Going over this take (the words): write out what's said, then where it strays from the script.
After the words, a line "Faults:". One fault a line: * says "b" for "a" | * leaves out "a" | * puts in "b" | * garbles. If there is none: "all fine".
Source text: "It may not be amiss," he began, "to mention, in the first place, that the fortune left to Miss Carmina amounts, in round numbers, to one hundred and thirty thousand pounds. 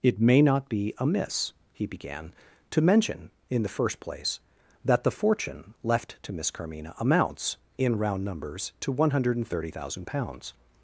"It may not be amiss," he began, "to mention, in the first place, that the fortune left to Miss Carmina amounts, in round numbers, to one hundred and thirty thousand pounds.
Faults:
all fine